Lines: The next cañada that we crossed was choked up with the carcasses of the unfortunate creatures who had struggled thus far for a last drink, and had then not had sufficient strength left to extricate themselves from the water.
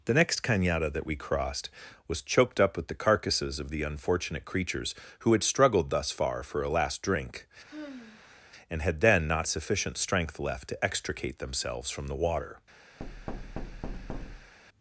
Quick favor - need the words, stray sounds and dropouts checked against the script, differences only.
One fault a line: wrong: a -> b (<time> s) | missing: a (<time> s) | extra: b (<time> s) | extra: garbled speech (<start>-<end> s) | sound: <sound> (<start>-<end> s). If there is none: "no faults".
sound: sigh (7.7-8.4 s)
missing: had (9.5 s)
sound: thud (13.0-14.5 s)